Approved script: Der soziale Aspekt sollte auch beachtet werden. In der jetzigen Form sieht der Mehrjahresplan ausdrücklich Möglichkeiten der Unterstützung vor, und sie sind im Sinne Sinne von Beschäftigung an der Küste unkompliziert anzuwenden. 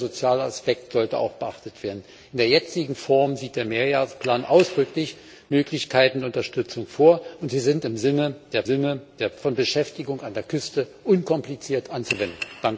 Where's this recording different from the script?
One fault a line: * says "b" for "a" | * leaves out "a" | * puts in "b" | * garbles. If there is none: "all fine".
all fine